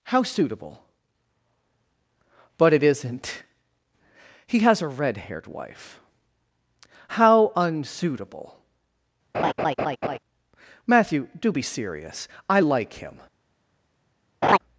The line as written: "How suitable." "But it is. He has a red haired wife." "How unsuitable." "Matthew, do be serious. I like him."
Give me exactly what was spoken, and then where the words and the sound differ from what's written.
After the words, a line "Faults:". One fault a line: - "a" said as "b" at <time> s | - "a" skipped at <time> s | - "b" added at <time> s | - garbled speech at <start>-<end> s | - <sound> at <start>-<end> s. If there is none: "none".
"How suitable." "But it isn't. He has a red haired wife." "How unsuitable." "Matthew, do be serious. I like him."
Faults:
- "is" said as "isn't" at 2.8 s
- laugh at 9.3-10.2 s
- laugh at 14.4-14.6 s